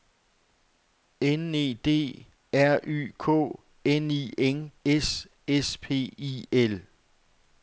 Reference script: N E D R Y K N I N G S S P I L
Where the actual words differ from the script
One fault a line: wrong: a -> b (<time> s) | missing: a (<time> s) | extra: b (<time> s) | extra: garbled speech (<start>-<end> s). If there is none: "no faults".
missing: G (4.7 s)